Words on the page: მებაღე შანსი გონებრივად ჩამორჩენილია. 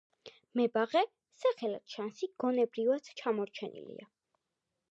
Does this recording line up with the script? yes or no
no